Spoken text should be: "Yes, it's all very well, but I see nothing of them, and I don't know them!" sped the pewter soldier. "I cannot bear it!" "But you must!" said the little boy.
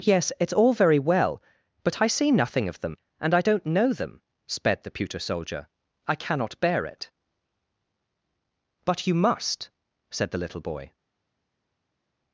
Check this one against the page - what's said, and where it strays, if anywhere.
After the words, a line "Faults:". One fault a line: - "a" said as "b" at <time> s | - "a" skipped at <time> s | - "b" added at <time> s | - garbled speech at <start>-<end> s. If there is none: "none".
"Yes, it's all very well, but I see nothing of them, and I don't know them!" sped the pewter soldier. "I cannot bear it!" "But you must!" said the little boy.
Faults:
none